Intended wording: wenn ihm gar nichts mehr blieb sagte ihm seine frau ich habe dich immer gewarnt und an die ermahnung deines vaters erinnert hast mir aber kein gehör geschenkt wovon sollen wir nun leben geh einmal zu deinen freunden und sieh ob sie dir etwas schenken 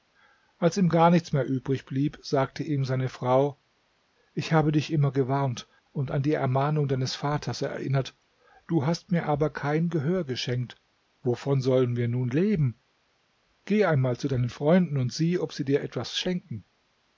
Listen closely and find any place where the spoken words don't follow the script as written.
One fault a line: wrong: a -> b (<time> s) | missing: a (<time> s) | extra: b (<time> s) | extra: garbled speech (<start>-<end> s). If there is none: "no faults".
wrong: wenn -> als (0.6 s)
extra: übrig (1.4 s)
extra: du (8.7 s)